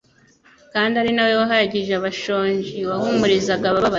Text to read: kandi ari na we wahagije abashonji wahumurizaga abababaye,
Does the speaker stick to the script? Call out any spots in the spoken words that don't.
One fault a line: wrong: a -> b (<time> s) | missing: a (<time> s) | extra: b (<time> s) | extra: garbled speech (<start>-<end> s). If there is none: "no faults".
no faults